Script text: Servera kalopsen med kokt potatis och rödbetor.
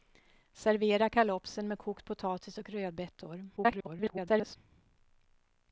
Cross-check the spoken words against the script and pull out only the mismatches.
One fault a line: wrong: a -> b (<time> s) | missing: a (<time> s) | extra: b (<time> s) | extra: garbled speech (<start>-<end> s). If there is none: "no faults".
extra: garbled speech (3.6-4.6 s)